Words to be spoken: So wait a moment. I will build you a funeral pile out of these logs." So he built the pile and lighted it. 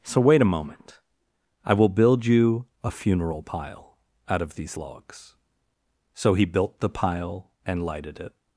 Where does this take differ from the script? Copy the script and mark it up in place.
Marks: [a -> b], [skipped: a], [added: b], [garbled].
So wait a moment. I will build you a funeral pile out of these logs." So he built the pile and lighted it.